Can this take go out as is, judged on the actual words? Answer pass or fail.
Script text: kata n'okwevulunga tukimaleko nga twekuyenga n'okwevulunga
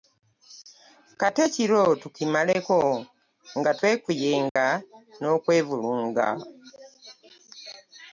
fail